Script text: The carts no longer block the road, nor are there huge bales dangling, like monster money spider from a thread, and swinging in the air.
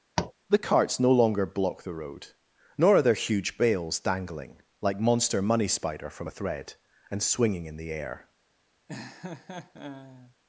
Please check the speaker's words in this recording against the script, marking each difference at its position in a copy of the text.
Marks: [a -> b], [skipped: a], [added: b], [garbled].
The carts no longer block the road, nor are there huge bales dangling, like monster money spider from a thread, and swinging in the air.